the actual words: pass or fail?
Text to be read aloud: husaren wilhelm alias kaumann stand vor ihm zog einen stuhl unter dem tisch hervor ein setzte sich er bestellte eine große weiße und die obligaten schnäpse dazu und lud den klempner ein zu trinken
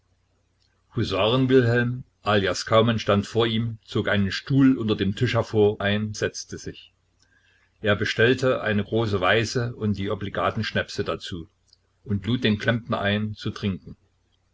pass